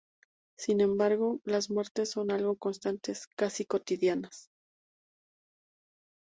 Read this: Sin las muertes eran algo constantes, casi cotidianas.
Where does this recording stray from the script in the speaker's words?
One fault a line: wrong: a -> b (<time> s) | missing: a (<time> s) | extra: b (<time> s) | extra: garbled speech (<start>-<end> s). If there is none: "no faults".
extra: embargo (0.8 s)
wrong: eran -> son (2.1 s)